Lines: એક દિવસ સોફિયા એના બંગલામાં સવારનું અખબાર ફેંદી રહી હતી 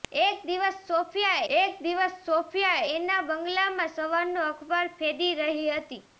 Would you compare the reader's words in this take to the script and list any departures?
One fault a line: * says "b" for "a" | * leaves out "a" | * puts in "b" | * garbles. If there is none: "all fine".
* puts in "એક દિવસ સોફિયા"